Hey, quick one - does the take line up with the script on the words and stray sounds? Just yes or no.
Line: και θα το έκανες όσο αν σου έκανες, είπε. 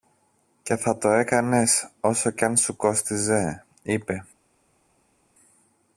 no